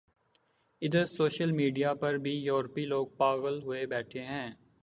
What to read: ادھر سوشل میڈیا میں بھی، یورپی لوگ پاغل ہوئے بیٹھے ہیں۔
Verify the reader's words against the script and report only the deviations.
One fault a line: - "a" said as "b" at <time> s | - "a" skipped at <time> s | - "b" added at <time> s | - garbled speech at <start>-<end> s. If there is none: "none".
- "میں" said as "پر" at 1.9 s